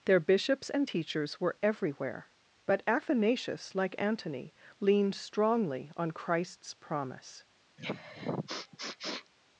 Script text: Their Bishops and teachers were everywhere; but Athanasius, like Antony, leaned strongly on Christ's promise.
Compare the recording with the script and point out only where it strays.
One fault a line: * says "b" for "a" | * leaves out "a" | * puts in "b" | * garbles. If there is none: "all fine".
all fine